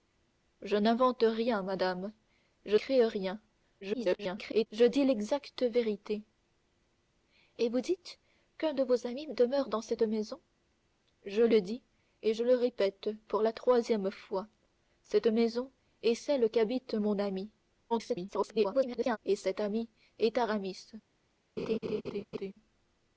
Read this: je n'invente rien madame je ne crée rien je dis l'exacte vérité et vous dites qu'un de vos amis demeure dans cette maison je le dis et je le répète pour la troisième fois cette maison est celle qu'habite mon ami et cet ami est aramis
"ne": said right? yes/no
no